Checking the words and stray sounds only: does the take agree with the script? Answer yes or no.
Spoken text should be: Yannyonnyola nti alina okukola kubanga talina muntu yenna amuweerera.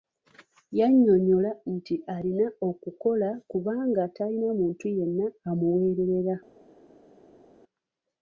yes